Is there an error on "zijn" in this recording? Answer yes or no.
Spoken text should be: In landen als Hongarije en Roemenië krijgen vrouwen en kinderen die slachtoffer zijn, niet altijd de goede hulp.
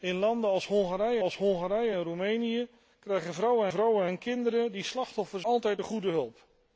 yes